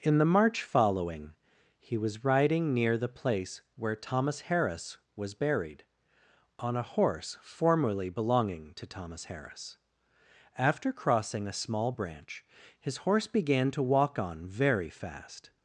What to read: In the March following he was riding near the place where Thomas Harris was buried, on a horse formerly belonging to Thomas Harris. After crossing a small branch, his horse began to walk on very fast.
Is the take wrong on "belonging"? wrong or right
right